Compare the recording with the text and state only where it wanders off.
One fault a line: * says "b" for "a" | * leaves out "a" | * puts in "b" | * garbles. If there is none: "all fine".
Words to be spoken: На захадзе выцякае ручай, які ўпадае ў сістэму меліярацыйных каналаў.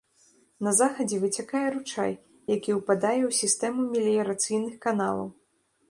all fine